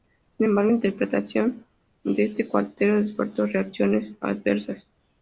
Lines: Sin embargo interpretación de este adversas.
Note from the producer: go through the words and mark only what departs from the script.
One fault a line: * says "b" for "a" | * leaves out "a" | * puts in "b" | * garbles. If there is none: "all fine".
* puts in "cuarteto despertó reacciones"